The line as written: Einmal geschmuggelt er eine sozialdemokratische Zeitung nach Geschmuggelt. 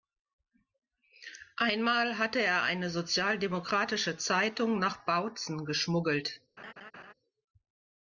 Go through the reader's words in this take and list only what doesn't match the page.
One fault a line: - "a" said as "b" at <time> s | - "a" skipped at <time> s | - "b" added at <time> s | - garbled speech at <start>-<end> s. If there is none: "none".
- "geschmuggelt" said as "hatte" at 2.2 s
- "Bautzen" added at 5.0 s